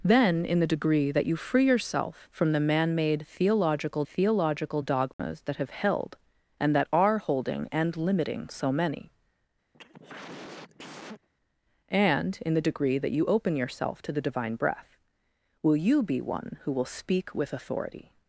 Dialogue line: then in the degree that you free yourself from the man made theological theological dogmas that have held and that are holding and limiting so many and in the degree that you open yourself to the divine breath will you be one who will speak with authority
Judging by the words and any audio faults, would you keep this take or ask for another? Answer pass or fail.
fail